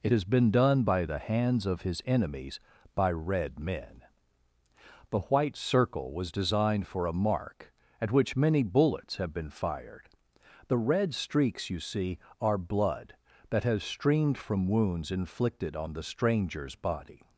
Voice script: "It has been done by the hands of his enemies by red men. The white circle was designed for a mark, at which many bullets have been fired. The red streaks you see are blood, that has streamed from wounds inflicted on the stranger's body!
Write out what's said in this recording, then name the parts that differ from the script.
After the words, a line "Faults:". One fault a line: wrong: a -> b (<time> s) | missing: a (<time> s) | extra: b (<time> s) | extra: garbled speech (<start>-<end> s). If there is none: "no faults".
"It has been done by the hands of his enemies by red men. The white circle was designed for a mark, at which many bullets have been fired. The red streaks you see are blood, that has streamed from wounds inflicted on the stranger's body!
Faults:
no faults